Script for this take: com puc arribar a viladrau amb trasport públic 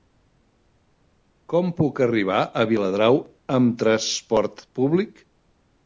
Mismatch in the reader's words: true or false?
false